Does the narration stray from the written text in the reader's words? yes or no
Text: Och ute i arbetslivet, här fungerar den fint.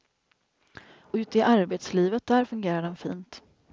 yes